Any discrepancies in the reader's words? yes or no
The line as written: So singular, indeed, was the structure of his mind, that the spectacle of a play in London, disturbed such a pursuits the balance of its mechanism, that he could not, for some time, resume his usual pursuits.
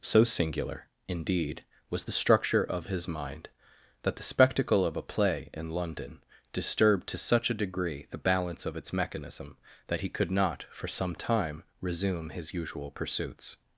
yes